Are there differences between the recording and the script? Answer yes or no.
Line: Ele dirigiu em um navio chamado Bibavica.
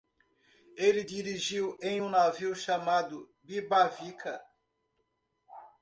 no